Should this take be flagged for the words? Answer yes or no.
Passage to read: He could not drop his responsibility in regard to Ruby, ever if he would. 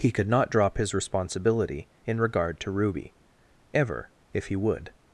no